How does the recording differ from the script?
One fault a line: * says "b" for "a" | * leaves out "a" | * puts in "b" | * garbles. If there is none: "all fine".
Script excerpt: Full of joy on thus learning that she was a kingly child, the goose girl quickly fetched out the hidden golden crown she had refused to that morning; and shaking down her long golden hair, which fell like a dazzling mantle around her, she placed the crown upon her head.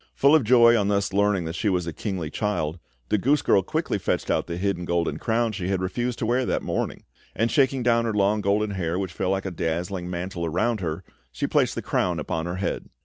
* puts in "wear"